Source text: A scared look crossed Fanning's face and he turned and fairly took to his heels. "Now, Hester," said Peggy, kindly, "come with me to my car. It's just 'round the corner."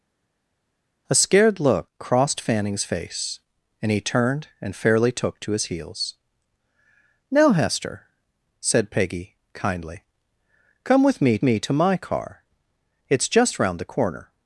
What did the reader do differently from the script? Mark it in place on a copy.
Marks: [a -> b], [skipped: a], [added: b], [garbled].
A scared look crossed Fanning's face and he turned and fairly took to his heels. "Now, Hester," said Peggy, kindly, "come with me [added: me] to my car. It's just 'round the corner."